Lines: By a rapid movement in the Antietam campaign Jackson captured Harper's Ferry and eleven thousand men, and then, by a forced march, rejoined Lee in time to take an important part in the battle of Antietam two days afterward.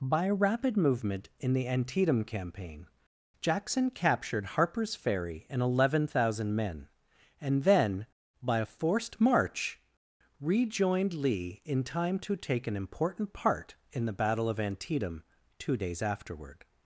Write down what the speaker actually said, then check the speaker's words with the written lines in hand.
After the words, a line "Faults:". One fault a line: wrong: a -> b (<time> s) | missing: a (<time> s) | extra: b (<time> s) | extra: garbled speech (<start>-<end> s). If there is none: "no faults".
By a rapid movement in the Antietam campaign Jackson captured Harper's Ferry and eleven thousand men, and then, by a forced march, rejoined Lee in time to take an important part in the battle of Antietam two days afterward.
Faults:
no faults